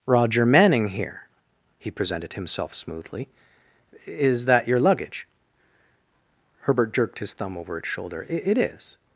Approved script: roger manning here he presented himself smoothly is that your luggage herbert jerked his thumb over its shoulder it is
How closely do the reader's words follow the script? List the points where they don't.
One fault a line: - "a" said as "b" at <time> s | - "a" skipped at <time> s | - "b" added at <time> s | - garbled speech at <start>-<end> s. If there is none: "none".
none